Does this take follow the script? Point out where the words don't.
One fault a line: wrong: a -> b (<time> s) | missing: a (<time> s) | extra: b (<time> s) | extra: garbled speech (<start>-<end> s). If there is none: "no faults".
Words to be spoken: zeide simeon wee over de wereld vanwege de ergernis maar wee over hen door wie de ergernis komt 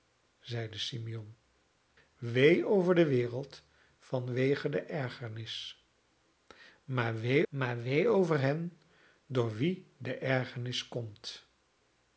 extra: maar wee (7.5 s)